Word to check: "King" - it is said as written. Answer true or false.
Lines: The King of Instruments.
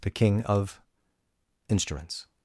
true